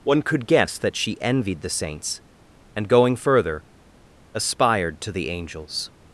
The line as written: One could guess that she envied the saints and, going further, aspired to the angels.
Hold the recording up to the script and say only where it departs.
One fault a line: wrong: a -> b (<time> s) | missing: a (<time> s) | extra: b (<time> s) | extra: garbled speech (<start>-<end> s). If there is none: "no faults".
no faults